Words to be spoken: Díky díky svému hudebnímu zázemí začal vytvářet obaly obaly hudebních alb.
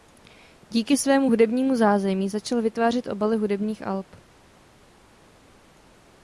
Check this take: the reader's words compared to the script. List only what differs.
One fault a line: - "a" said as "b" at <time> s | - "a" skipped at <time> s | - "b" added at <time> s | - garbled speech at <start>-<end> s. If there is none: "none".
- "díky" skipped at 1.0 s
- "obaly" skipped at 3.4 s